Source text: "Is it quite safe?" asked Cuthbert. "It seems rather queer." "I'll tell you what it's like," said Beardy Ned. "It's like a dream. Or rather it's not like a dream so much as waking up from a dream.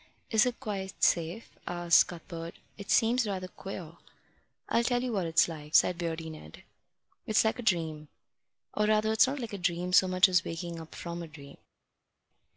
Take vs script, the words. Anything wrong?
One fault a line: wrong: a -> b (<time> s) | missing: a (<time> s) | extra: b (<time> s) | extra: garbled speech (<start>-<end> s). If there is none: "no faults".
no faults